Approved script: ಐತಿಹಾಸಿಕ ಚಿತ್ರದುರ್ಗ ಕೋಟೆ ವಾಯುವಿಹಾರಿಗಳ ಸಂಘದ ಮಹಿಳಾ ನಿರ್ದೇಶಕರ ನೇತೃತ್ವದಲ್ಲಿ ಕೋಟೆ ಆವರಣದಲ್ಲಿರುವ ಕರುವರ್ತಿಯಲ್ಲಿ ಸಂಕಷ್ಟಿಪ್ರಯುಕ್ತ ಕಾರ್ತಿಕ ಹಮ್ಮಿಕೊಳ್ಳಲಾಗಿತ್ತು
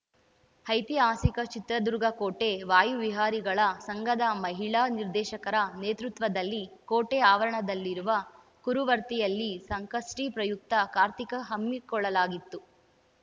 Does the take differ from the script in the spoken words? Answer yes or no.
no